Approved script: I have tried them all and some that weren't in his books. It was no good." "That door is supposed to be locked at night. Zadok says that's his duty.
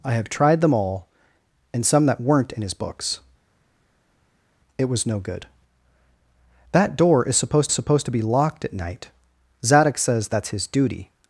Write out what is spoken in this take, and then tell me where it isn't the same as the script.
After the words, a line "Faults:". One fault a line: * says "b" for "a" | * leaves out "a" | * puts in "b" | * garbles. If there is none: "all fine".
I have tried them all and some that weren't in his books. It was no good." "That door is supposed supposed to be locked at night. Zadok says that's his duty.
Faults:
* puts in "supposed"